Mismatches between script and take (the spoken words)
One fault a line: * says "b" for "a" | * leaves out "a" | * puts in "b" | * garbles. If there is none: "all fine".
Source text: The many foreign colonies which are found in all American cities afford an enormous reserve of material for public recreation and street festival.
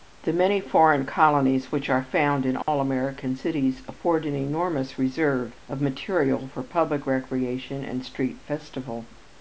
all fine